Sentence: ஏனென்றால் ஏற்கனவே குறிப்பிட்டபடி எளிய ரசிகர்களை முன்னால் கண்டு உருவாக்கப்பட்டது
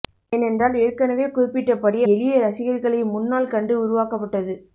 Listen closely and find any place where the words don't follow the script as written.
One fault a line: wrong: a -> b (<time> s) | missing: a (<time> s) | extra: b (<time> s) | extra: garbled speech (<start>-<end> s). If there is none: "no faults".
no faults